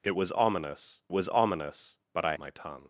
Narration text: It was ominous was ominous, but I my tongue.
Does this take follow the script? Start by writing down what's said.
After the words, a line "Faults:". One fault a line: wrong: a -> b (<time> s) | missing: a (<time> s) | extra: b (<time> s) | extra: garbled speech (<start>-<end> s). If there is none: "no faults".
It was ominous was ominous, but I my tongue.
Faults:
no faults